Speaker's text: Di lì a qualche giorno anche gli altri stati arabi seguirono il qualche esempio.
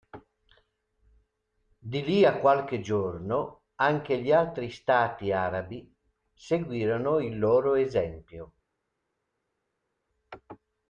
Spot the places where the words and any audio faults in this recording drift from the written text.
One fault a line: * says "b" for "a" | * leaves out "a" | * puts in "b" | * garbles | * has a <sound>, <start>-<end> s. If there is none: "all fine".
* says "loro" for "qualche"